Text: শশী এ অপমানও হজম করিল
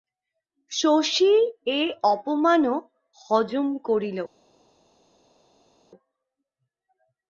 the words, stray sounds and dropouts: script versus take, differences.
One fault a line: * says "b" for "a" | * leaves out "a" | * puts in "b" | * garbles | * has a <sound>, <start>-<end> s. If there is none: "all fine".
all fine